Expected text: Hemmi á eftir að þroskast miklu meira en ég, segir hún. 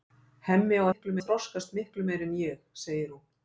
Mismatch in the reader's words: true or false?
true